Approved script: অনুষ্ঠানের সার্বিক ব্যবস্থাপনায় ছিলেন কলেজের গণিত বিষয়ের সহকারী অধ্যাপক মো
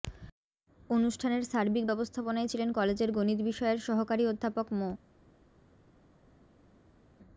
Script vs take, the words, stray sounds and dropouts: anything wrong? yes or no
no